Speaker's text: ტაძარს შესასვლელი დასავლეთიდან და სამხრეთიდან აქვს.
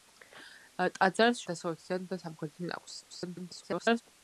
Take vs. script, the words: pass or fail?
fail